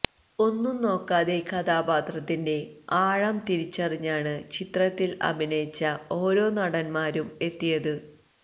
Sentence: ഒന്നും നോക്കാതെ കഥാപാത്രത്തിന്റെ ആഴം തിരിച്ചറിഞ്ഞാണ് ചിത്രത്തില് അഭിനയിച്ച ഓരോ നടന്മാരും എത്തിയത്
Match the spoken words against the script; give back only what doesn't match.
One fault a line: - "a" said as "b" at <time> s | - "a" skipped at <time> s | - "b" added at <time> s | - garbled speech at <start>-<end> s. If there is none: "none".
none